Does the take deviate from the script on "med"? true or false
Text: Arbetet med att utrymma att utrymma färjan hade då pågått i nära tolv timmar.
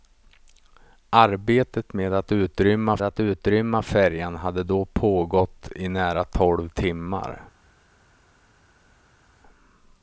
false